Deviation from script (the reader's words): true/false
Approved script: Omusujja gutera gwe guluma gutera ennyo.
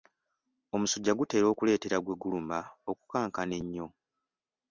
true